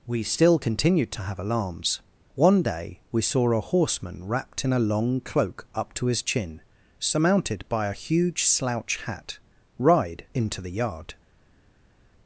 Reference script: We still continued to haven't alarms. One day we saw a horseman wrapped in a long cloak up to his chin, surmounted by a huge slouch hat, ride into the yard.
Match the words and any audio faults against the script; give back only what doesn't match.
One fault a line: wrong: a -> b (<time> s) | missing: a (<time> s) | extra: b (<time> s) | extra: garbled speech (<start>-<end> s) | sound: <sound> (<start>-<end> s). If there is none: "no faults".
wrong: haven't -> have (1.2 s)